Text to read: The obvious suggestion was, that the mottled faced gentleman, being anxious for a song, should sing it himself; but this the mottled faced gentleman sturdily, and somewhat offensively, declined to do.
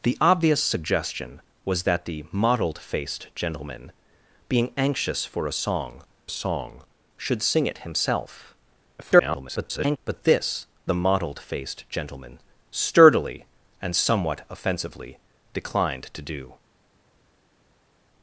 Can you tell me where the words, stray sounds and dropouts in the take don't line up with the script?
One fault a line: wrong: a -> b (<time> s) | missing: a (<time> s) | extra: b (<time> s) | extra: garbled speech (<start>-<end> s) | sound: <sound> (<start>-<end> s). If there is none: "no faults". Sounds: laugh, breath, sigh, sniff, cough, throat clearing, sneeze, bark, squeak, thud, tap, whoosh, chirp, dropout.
extra: song (6.3 s)
extra: garbled speech (9.0-10.0 s)